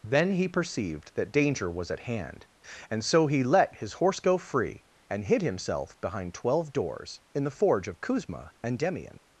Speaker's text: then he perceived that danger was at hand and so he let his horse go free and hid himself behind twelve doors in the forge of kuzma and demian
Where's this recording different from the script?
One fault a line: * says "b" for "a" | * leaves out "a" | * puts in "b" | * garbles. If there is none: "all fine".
all fine